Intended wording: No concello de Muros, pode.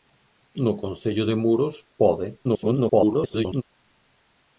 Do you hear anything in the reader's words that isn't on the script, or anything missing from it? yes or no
yes